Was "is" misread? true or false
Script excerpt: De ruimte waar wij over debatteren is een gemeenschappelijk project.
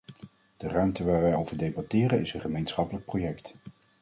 false